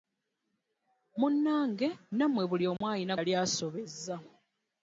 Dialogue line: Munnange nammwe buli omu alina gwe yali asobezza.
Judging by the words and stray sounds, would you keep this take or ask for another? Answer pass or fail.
fail